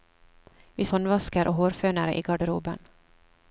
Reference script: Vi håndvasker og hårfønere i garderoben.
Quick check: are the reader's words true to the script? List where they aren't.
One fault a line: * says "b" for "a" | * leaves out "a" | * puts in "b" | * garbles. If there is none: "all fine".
all fine